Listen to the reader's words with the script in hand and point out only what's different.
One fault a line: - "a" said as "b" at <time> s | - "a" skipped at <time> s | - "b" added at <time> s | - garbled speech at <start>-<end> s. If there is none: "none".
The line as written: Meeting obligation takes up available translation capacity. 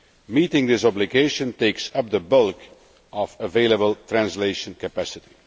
- "this" added at 0.7 s
- "the bulk of" added at 2.1 s